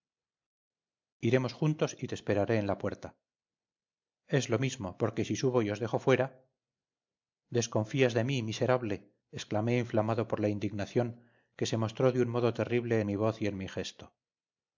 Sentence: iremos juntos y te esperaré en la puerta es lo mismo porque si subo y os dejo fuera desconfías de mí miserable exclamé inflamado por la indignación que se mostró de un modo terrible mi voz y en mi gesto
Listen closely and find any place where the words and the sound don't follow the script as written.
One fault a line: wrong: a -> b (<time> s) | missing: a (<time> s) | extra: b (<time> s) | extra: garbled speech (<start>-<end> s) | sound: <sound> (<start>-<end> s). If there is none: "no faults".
no faults